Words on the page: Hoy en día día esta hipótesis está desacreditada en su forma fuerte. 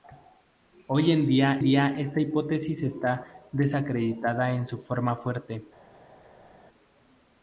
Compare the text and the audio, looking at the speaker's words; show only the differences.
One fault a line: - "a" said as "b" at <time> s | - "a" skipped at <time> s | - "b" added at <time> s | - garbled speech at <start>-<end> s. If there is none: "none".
none